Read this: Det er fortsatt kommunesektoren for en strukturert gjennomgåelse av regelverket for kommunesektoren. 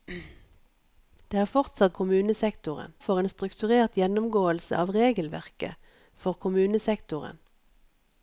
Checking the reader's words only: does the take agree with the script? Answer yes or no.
yes